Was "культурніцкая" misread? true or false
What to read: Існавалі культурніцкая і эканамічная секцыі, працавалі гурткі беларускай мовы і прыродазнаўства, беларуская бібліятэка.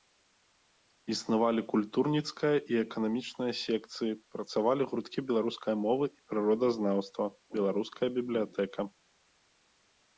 false